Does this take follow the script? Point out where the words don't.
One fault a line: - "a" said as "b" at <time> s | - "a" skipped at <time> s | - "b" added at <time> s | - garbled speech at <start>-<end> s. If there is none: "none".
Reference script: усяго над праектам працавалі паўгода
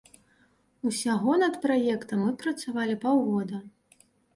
- "мы" added at 2.3 s